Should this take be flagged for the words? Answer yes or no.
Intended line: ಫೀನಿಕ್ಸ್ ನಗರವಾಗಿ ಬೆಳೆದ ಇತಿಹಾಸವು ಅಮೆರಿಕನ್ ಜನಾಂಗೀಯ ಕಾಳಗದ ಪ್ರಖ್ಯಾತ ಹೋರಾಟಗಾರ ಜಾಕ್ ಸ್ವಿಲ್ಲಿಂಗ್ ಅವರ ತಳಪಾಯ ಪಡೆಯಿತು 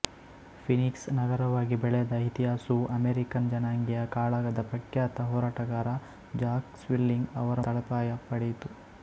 no